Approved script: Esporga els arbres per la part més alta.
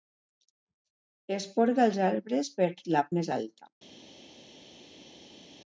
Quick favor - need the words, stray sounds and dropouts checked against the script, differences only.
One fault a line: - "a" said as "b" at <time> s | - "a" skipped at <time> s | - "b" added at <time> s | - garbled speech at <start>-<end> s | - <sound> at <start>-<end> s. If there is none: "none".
- "part" skipped at 3.1 s